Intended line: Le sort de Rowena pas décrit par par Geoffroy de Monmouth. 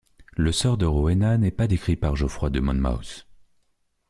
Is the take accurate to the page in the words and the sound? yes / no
no